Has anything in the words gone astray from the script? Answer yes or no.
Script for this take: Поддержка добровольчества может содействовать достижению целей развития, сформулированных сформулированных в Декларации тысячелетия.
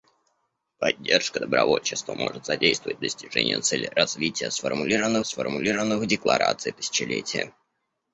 no